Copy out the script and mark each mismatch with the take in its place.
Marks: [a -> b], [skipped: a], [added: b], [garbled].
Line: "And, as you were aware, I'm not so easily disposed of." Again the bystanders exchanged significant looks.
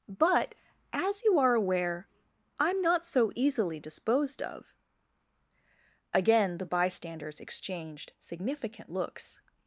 ["And, -> But] as you [were -> are] aware, I'm not so easily disposed of." Again the bystanders exchanged significant looks.